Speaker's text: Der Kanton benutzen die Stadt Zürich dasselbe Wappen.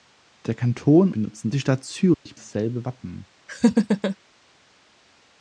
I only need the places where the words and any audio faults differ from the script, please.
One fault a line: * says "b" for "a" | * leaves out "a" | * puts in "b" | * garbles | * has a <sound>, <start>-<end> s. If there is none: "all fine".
* has a dropout, 2.1-2.3 s
* has a laugh, 3.5-4.2 s